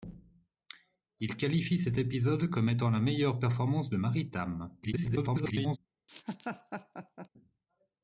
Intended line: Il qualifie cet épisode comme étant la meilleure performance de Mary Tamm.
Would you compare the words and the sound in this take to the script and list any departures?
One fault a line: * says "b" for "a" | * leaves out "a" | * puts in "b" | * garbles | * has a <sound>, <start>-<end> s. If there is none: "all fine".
* garbles
* has a laugh, 6.1-7.3 s